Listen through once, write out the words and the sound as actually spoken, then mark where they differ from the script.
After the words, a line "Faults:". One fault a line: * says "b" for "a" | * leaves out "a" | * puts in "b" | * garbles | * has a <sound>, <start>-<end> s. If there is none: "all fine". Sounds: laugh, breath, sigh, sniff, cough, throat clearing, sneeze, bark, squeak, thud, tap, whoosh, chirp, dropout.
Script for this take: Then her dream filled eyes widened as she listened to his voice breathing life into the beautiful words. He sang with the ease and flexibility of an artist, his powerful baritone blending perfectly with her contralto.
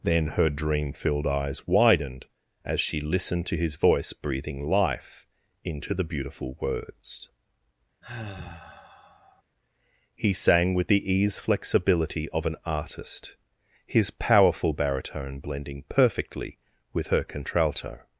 Then her dream filled eyes widened as she listened to his voice breathing life into the beautiful words. He sang with the ease flexibility of an artist, his powerful baritone blending perfectly with her contralto.
Faults:
* has a sigh, 8.0-9.4 s
* leaves out "and"